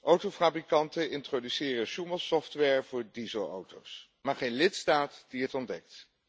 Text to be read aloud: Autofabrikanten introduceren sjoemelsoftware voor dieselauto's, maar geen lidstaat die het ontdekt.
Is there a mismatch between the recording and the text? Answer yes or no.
no